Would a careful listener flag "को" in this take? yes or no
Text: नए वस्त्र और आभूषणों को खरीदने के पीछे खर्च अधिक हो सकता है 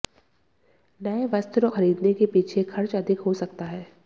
yes